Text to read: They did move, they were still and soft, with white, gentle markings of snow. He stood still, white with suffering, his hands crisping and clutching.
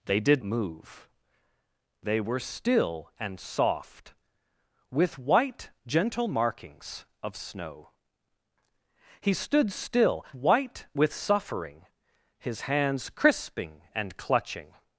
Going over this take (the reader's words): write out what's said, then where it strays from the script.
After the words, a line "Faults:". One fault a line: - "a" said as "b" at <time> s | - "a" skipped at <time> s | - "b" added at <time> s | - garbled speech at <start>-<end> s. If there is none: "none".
They did move, they were still and soft, with white, gentle markings of snow. He stood still, white with suffering, his hands crisping and clutching.
Faults:
none